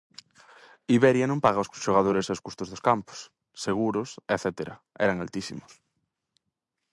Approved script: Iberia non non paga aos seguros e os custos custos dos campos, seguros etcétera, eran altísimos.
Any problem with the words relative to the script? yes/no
yes